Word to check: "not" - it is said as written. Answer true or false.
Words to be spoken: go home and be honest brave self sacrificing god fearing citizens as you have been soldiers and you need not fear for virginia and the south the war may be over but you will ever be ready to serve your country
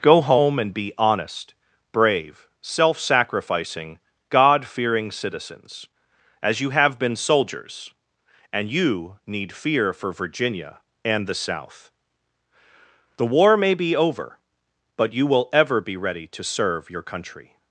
false